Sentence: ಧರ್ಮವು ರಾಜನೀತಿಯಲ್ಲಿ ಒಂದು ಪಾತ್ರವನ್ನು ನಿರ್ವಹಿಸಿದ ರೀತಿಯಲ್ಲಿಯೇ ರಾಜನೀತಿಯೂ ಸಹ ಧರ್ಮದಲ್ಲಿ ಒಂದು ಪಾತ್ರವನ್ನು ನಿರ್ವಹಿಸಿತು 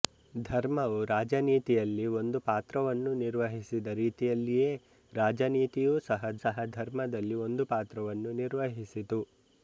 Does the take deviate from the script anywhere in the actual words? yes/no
yes